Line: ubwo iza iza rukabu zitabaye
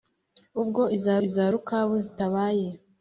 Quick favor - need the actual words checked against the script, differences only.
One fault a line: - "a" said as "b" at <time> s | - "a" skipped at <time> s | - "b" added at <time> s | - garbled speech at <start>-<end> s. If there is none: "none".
none